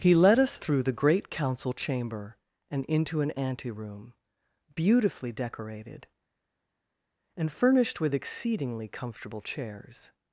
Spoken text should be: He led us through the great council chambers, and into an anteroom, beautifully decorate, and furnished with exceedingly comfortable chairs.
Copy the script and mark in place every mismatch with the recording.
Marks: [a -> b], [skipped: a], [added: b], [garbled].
He led us through the great council [chambers, -> chamber] and into an anteroom, beautifully [decorate, -> decorated] and furnished with exceedingly comfortable chairs.